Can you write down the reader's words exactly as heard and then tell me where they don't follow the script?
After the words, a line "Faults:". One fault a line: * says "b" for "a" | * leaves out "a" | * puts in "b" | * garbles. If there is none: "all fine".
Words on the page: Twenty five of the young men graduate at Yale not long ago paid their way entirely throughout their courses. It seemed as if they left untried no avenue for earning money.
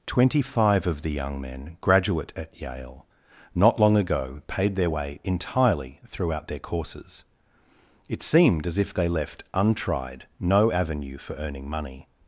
Twenty five of the young men graduate at Yale not long ago paid their way entirely throughout their courses. It seemed as if they left untried no avenue for earning money.
Faults:
all fine